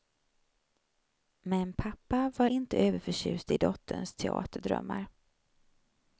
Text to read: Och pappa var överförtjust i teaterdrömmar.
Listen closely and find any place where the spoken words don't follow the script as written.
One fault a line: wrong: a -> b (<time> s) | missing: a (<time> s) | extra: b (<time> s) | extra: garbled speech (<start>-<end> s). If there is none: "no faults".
wrong: Och -> Men (1.4 s)
extra: inte (2.4 s)
extra: dotterns (3.6 s)